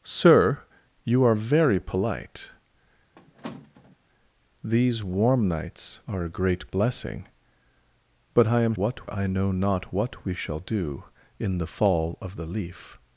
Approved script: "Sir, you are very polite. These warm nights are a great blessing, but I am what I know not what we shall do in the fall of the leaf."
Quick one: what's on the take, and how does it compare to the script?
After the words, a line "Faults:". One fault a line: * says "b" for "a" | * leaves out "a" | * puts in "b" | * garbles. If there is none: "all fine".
"Sir, you are very polite. These warm nights are a great blessing, but I am what I know not what we shall do in the fall of the leaf."
Faults:
all fine